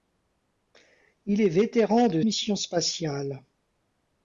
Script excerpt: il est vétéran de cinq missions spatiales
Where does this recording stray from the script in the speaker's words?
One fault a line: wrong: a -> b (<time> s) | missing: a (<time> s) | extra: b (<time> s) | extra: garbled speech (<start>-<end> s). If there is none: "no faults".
missing: cinq (2.2 s)